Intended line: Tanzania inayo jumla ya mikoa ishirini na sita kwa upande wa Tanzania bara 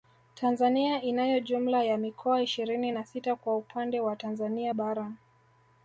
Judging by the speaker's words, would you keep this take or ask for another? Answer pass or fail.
pass